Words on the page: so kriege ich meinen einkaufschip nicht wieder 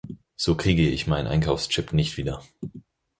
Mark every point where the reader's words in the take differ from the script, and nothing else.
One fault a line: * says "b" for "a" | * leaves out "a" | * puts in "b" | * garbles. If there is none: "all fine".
all fine